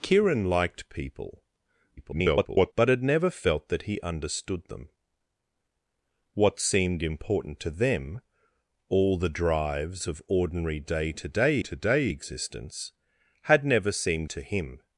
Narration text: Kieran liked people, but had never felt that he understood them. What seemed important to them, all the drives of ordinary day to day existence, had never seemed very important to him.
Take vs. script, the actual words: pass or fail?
fail